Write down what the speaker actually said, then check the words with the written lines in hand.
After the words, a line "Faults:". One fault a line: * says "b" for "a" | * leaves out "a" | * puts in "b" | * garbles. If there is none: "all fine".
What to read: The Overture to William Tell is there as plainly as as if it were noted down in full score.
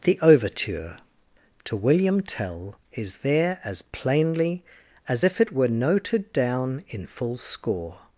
The Overture to William Tell is there as plainly as if it were noted down in full score.
Faults:
* leaves out "as"